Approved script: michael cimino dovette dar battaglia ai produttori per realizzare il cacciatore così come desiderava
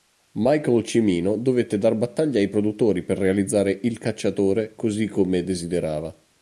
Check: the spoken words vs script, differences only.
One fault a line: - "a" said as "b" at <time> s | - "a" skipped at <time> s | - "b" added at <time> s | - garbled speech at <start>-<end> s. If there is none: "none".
none